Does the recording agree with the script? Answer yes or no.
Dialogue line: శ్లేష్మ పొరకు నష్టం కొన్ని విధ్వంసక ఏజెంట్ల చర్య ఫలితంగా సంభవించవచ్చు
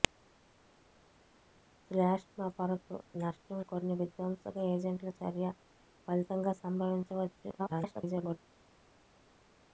no